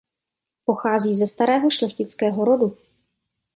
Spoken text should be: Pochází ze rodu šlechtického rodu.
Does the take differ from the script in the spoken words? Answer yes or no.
yes